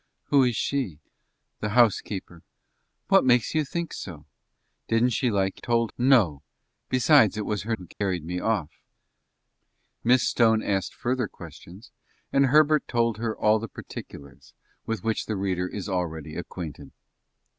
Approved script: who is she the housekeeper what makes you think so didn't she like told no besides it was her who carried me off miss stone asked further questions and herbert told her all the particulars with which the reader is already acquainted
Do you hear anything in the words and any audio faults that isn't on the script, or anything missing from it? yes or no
yes